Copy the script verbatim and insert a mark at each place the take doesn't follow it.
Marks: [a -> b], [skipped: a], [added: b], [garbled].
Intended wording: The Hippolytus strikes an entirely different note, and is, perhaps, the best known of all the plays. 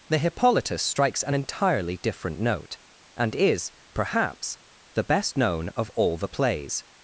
The Hippolytus strikes an entirely different note, and is, perhaps, the best known of all the plays.